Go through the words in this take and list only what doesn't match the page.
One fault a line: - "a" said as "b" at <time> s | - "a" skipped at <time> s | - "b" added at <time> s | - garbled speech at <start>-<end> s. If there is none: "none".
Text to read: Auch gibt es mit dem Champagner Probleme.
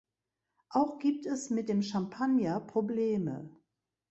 none